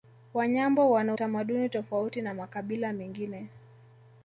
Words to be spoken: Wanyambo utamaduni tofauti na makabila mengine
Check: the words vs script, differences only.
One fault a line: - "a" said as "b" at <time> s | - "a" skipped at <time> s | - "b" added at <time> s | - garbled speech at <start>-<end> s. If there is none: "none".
- "wana" added at 0.9 s